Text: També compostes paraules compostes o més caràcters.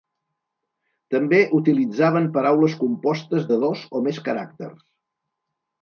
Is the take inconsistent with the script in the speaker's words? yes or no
yes